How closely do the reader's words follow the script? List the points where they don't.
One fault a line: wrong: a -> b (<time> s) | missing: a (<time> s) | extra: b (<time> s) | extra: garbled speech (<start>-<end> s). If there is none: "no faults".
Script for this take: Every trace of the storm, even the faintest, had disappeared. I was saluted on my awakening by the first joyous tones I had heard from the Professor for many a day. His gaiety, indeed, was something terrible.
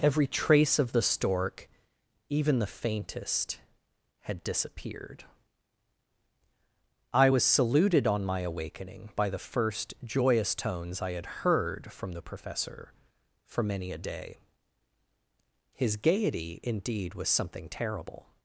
wrong: storm -> stork (1.0 s)